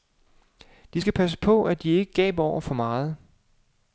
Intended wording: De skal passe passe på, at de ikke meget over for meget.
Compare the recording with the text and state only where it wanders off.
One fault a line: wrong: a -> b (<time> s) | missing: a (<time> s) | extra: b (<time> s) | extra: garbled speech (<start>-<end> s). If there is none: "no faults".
missing: passe (1.4 s)
wrong: meget -> gaber (2.1 s)